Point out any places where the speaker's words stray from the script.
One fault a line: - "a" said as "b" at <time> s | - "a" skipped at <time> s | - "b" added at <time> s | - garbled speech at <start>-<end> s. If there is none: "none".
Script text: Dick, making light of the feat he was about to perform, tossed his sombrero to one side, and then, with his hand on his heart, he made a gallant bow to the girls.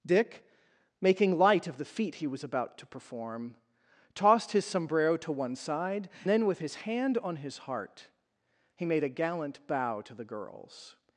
- "and" skipped at 6.1 s